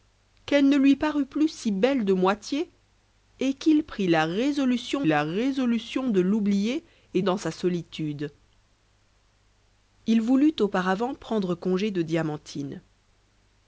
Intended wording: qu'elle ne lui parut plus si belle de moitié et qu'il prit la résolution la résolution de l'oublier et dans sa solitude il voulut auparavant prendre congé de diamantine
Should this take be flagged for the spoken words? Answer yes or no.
no